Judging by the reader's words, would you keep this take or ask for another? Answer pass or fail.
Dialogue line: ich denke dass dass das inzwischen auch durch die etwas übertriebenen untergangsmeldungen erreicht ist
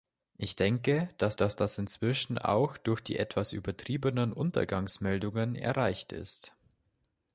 pass